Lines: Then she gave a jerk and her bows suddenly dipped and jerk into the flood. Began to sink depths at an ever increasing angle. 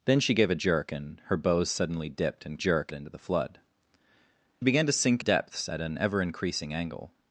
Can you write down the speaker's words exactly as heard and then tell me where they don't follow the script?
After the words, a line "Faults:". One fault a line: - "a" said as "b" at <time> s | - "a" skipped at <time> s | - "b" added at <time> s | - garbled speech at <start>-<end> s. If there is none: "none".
Then she gave a jerk and her bows suddenly dipped and jerk into the flood. Began to sink depths at an ever increasing angle.
Faults:
none